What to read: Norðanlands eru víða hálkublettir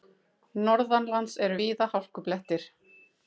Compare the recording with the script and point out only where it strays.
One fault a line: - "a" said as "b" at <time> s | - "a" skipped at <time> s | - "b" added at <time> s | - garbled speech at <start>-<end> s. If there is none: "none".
none